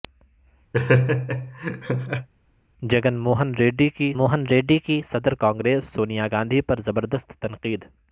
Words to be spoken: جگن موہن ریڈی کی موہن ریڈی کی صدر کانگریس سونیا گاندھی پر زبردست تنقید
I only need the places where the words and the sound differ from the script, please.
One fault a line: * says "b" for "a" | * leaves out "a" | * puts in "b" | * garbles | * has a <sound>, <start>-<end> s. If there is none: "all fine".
* has a laugh, 0.7-2.3 s